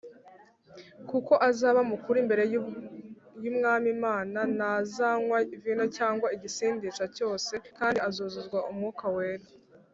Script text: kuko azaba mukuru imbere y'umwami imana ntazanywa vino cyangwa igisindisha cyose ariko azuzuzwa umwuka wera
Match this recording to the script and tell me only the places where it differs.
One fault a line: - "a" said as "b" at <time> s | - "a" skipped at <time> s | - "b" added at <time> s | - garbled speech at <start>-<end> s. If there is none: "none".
- "ariko" said as "kandi" at 7.8 s